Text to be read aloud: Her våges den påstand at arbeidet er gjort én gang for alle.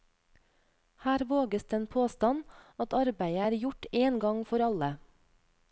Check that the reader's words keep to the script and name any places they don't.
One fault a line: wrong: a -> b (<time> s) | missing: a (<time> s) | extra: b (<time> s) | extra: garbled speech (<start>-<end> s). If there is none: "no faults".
no faults